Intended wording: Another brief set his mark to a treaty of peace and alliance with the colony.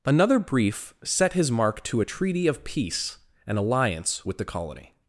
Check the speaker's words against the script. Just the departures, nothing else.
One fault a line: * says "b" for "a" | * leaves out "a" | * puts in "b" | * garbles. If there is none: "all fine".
all fine